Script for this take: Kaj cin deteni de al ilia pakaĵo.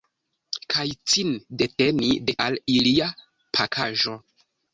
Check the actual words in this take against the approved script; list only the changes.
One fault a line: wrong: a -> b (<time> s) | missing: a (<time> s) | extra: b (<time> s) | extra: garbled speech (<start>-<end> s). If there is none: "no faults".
no faults